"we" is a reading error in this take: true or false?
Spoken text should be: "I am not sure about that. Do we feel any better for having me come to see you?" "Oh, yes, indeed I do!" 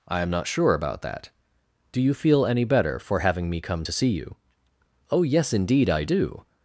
true